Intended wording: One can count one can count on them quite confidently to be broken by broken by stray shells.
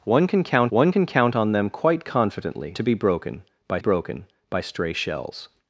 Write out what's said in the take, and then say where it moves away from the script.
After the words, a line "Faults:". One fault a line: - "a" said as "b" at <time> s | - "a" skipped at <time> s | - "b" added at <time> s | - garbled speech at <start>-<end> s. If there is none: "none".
One can count one can count on them quite confidently to be broken by broken by stray shells.
Faults:
none